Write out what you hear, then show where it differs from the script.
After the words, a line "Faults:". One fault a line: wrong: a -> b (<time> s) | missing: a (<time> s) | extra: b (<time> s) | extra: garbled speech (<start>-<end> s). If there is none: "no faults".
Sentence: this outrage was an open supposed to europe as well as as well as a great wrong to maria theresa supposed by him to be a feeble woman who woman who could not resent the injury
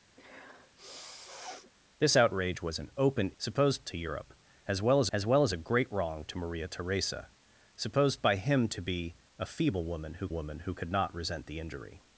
this outrage was an open supposed to europe as well as as well as a great wrong to maria theresa supposed by him to be a feeble woman who woman who could not resent the injury
Faults:
no faults